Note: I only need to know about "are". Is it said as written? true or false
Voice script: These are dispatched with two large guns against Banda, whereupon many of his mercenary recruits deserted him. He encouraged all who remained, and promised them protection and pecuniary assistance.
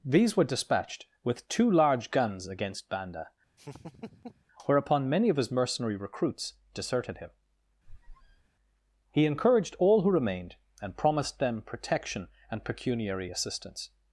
false